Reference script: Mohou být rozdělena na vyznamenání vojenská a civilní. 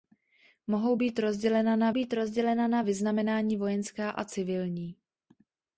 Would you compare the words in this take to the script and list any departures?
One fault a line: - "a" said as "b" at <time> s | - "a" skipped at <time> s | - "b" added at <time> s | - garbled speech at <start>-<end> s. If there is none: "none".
- "být rozdělena na" added at 1.9 s